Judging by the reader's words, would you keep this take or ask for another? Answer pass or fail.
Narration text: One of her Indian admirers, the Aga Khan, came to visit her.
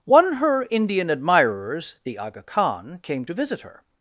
fail